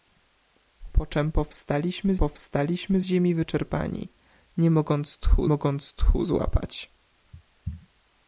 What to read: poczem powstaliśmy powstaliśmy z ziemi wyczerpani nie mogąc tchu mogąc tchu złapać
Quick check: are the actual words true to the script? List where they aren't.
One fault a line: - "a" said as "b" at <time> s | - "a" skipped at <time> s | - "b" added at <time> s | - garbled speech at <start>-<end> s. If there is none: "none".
none